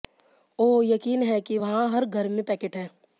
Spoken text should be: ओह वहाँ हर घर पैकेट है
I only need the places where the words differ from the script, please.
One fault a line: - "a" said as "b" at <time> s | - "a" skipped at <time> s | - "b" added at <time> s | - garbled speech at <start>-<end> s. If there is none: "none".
- "यकीन है कि" added at 0.8 s
- "में" added at 2.3 s